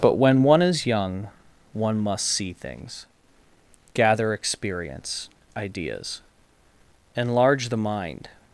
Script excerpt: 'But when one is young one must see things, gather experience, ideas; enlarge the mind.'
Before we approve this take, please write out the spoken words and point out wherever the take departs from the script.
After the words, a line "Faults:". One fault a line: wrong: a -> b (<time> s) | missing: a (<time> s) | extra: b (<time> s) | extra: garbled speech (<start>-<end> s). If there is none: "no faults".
'But when one is young one must see things, gather experience, ideas; enlarge the mind.'
Faults:
no faults